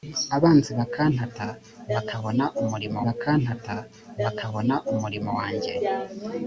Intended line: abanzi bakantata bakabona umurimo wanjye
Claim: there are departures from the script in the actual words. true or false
true